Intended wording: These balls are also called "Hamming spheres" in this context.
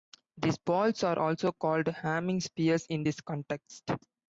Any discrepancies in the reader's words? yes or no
no